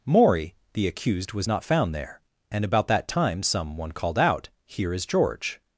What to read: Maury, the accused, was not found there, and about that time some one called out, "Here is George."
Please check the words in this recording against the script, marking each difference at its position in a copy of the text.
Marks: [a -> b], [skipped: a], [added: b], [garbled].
Maury, the accused, was not found there, and about that time some one called out, "Here is George."